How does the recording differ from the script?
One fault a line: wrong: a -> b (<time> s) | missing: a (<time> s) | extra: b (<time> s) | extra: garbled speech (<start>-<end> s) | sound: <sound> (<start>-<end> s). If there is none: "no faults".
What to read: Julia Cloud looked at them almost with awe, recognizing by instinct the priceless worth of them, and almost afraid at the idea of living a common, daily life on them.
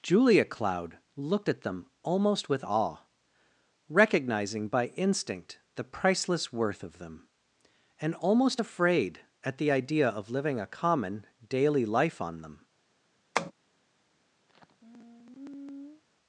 sound: tap (13.4-13.5 s)
sound: sigh (14.5-16.0 s)